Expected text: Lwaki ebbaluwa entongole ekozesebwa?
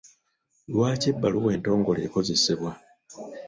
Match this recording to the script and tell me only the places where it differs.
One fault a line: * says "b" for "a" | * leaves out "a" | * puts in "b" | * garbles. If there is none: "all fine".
all fine